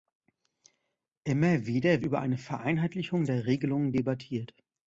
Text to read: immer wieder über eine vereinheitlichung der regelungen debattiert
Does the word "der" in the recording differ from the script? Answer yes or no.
no